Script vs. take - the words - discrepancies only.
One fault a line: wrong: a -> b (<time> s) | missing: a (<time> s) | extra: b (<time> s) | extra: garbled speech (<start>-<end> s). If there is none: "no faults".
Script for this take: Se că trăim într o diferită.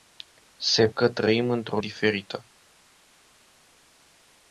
no faults